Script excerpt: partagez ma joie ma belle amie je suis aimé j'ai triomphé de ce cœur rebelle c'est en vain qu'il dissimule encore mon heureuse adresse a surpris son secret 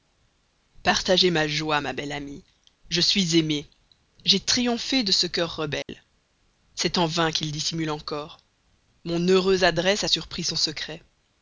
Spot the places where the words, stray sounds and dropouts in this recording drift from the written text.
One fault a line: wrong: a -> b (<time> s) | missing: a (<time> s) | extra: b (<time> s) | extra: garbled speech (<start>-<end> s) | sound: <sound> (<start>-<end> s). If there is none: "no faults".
sound: dropout (5.8-5.9 s)